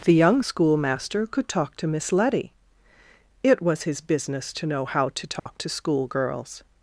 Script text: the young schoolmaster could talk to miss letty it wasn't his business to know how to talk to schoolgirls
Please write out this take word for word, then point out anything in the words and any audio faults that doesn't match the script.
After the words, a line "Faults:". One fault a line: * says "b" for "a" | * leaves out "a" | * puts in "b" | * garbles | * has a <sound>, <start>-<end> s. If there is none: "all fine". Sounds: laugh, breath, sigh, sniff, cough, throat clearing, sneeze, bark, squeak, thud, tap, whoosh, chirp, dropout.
the young schoolmaster could talk to miss letty it was his business to know how to talk to schoolgirls
Faults:
* says "was" for "wasn't"
* has a dropout, 5.4-5.5 s